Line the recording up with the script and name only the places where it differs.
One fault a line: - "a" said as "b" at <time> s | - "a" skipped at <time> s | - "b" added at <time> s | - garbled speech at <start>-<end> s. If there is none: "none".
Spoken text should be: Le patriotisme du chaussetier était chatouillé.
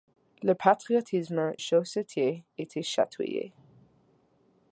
- "du" skipped at 1.5 s